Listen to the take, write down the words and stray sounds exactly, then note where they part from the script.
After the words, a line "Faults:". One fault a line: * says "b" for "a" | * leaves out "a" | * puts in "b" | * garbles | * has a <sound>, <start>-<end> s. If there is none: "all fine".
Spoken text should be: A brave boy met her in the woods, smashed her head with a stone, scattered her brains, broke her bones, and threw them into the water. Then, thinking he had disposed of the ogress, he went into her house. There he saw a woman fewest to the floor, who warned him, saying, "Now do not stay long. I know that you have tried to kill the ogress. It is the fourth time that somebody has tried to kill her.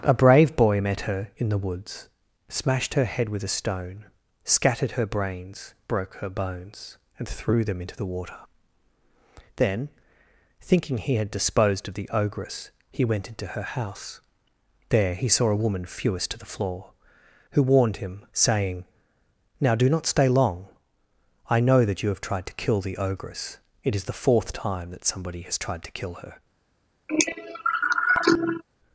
A brave boy met her in the woods, smashed her head with a stone, scattered her brains, broke her bones, and threw them into the water. Then, thinking he had disposed of the ogress, he went into her house. There he saw a woman fewest to the floor, who warned him, saying, "Now do not stay long. I know that you have tried to kill the ogress. It is the fourth time that somebody has tried to kill her.
Faults:
* has a cough, 27.1-28.6 s